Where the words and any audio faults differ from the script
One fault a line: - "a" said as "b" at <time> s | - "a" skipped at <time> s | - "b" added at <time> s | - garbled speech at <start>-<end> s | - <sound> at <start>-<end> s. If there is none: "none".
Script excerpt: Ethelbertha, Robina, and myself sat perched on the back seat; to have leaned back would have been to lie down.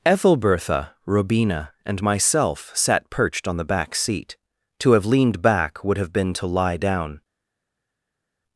none